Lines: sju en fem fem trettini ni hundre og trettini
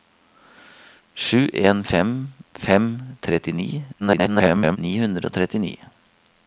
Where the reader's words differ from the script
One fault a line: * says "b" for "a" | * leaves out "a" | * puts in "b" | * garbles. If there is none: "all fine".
* garbles